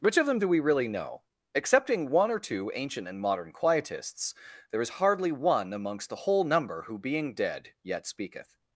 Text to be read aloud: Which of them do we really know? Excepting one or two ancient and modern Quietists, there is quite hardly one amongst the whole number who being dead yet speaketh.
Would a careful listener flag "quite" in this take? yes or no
yes